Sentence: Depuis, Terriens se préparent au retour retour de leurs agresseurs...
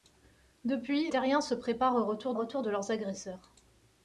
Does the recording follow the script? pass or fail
pass